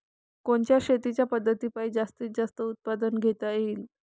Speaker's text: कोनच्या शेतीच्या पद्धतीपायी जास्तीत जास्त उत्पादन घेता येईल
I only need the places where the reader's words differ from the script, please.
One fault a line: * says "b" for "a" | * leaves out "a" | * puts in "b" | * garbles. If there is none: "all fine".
all fine